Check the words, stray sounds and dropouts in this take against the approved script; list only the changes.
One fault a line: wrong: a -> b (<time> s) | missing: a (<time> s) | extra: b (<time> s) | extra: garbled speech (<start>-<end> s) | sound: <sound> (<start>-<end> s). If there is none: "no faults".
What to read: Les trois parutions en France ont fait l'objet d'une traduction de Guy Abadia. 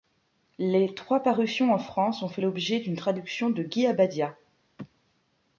no faults